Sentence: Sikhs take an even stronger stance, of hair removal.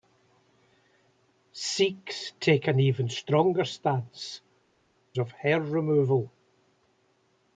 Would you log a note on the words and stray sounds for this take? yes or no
no